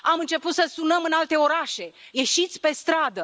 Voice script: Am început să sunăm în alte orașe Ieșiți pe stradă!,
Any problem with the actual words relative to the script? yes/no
no